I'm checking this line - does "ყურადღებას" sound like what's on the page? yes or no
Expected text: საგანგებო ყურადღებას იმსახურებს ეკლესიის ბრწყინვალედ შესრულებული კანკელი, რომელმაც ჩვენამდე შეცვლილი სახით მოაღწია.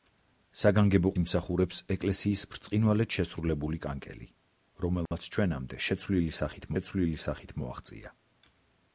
no